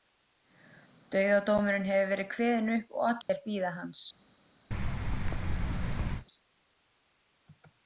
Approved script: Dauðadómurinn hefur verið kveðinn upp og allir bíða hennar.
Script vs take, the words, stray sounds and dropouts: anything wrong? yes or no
yes